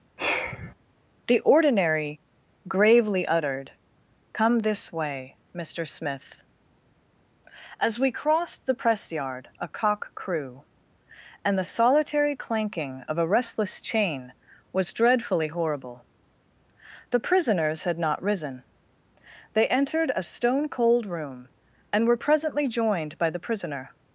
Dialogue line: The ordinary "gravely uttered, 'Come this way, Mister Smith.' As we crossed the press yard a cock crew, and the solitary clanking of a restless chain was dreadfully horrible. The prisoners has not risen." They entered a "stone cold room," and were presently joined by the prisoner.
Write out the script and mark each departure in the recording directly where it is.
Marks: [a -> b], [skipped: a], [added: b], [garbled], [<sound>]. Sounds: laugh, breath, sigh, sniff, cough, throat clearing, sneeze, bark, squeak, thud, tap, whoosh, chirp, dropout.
[sigh] The ordinary "gravely uttered, 'Come this way, Mister Smith.' As we crossed the press yard a cock crew, and the solitary clanking of a restless chain was dreadfully horrible. The prisoners [has -> had] not risen." They entered a "stone cold room," and were presently joined by the prisoner.